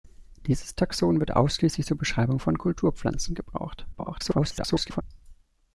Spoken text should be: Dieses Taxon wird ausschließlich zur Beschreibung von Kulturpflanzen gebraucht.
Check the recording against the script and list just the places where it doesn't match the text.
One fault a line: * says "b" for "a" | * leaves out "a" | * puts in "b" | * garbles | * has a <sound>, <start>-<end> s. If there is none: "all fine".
* garbles